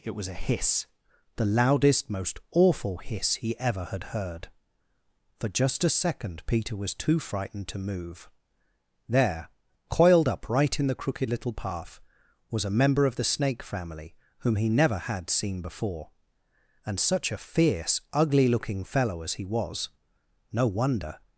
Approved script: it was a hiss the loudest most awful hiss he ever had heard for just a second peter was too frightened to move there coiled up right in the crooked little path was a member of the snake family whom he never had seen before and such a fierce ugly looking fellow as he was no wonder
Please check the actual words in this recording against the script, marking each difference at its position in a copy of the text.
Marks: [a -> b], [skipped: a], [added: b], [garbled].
it was a hiss the loudest most awful hiss he ever had heard for just a second peter was too frightened to move there coiled up right in the crooked little path was a member of the snake family whom he never had seen before and such a fierce ugly looking fellow as he was no wonder